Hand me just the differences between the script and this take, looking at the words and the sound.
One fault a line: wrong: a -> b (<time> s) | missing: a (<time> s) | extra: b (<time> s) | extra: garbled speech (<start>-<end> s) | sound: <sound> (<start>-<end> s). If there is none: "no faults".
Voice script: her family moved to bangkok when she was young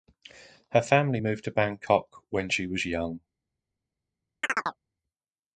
sound: chirp (4.4-4.8 s)